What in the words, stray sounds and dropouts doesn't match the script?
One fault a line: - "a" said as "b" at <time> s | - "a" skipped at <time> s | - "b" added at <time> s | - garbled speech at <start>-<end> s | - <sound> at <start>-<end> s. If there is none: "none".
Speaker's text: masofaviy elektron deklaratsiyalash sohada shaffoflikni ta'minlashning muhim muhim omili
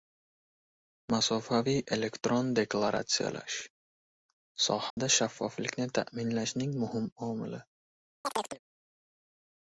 - dropout at 4.9-5.0 s
- "muhim" skipped at 7.1 s
- chirp at 8.2-8.6 s